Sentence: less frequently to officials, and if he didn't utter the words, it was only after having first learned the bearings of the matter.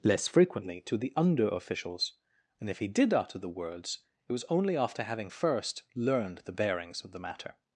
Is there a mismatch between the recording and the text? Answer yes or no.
yes